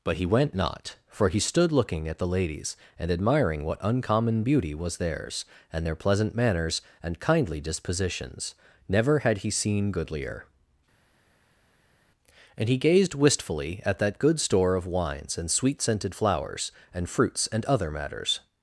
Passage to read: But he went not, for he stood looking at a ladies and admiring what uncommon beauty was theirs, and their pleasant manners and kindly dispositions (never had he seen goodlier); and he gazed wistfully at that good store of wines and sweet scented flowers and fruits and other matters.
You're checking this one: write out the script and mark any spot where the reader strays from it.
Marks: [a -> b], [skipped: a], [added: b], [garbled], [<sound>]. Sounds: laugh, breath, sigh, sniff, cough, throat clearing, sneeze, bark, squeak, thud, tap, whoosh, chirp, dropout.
But he went not, for he stood looking at [a -> the] ladies and admiring what uncommon beauty was theirs, and their pleasant manners and kindly dispositions (never had he seen goodlier); and he gazed wistfully at that good store of wines and sweet scented flowers and fruits and other matters.